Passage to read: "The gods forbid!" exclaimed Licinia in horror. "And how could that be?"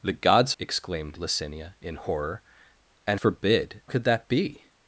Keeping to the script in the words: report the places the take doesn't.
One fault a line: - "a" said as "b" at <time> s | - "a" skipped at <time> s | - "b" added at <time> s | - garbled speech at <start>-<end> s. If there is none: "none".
- "forbid" skipped at 0.5 s
- "how" said as "forbid" at 3.1 s